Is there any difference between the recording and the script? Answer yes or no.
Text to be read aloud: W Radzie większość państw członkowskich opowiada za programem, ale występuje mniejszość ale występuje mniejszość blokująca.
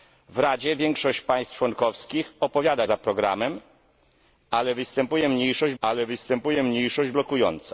no